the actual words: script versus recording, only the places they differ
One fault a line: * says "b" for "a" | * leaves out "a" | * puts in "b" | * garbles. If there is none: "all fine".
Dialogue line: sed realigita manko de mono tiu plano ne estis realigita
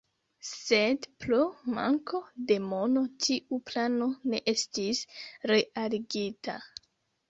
* says "pro" for "realigita"